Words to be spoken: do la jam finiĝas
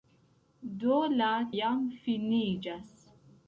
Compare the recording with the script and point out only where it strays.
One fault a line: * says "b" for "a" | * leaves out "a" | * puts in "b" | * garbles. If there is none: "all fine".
all fine